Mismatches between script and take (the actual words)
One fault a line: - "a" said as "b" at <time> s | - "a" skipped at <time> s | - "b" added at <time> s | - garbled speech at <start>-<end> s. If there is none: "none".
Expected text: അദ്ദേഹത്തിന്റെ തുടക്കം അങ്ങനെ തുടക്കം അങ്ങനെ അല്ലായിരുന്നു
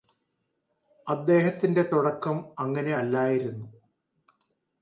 - "തുടക്കം അങ്ങനെ" skipped at 2.9 s